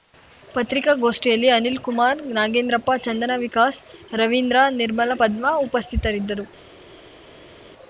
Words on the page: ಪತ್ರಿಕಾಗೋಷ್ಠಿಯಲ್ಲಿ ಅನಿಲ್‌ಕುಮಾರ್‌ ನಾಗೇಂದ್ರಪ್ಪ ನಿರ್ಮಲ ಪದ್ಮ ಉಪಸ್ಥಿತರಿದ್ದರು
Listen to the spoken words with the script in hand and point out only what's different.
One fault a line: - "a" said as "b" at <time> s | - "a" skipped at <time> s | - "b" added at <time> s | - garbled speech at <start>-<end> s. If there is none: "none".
- "ಚಂದನ ವಿಕಾಸ್ ರವೀಂದ್ರ" added at 3.0 s